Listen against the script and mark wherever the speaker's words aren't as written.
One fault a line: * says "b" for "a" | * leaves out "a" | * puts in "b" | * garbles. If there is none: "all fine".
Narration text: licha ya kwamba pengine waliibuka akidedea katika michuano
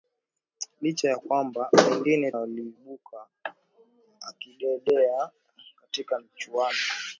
all fine